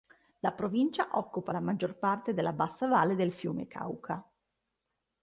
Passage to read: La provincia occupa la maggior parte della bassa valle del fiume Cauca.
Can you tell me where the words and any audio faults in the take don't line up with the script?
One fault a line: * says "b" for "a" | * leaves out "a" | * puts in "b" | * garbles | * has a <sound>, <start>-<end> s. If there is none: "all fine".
all fine